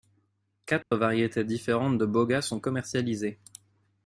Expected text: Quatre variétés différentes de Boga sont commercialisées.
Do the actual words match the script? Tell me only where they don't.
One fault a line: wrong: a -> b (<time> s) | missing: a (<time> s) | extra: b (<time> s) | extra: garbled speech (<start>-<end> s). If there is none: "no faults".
no faults